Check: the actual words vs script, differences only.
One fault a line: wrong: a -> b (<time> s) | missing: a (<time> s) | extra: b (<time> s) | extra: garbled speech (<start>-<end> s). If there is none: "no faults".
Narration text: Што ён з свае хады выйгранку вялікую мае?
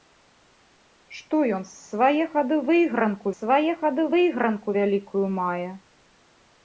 extra: свае хады выйгранку (3.4 s)